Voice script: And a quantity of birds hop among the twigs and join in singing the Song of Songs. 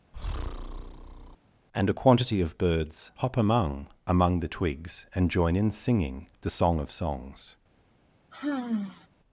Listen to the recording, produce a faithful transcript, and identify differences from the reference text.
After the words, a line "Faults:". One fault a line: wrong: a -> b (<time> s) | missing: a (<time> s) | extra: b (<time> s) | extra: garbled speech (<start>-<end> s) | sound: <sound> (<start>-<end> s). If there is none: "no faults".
And a quantity of birds hop among among the twigs and join in singing the Song of Songs.
Faults:
sound: breath (0.1-1.4 s)
extra: among (4.0 s)
sound: sigh (8.3-9.1 s)